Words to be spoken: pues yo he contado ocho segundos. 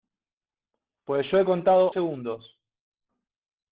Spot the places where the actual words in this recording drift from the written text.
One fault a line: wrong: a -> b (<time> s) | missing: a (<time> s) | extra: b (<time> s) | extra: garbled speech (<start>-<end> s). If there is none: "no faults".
missing: ocho (1.9 s)